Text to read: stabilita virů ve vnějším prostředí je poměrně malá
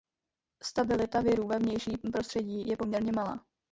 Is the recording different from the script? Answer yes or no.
no